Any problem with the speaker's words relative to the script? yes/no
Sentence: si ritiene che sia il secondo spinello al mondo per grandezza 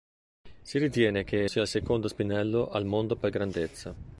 no